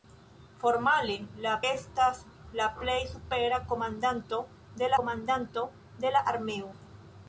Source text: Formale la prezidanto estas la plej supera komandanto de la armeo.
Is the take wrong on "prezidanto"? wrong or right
wrong